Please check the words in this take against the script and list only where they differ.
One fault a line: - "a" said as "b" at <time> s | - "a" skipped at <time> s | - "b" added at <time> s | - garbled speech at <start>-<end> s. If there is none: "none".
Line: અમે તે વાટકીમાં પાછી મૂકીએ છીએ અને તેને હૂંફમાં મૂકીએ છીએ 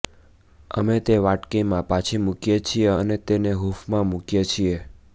none